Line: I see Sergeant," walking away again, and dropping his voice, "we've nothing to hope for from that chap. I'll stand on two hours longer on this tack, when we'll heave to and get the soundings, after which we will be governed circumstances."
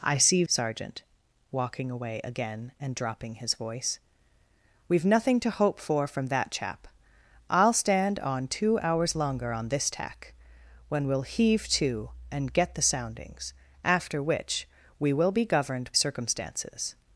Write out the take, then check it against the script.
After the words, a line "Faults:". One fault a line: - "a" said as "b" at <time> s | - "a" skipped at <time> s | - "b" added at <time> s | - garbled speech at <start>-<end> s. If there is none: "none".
I see Sergeant," walking away again, and dropping his voice, "we've nothing to hope for from that chap. I'll stand on two hours longer on this tack, when we'll heave to and get the soundings, after which we will be governed circumstances."
Faults:
none